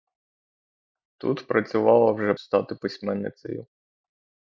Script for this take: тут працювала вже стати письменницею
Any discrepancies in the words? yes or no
no